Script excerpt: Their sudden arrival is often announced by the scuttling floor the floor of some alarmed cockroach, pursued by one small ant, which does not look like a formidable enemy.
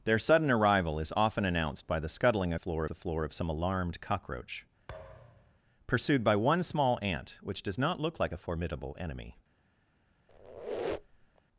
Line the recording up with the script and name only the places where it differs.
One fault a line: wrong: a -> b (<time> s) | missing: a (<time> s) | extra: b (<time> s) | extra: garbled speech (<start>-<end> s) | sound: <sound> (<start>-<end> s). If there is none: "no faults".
sound: thud (4.9-5.6 s)
sound: squeak (10.3-11.4 s)